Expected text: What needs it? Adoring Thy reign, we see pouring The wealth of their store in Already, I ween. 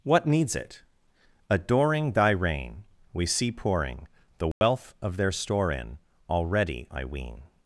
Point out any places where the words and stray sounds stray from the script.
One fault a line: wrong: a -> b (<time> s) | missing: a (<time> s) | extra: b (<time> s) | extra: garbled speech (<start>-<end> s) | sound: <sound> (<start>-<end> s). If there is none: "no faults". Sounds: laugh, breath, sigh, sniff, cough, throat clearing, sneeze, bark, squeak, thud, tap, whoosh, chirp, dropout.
sound: dropout (4.5-4.6 s)